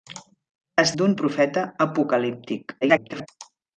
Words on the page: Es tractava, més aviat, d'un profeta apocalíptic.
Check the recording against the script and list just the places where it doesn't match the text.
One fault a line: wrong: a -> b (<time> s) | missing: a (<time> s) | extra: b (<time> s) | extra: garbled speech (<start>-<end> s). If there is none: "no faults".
missing: tractava més aviat (0.9 s)
extra: garbled speech (2.8-3.3 s)